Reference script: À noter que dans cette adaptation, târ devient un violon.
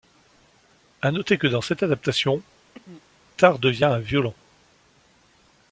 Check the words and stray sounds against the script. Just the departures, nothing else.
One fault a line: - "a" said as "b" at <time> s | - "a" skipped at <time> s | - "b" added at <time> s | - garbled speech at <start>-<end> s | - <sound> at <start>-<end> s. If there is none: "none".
- throat clearing at 2.7-3.0 s